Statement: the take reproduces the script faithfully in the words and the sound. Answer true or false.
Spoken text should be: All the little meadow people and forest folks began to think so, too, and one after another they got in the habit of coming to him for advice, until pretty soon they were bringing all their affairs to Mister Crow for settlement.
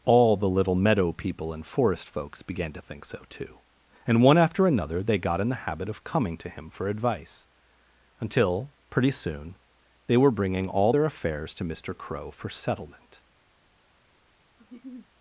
false